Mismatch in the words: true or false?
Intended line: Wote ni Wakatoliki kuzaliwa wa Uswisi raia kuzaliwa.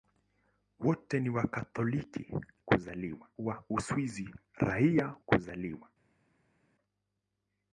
false